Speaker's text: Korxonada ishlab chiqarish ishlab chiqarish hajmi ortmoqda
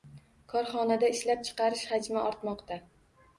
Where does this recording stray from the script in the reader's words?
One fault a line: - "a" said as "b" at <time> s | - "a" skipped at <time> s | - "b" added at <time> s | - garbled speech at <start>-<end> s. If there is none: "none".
- "ishlab chiqarish" skipped at 1.9 s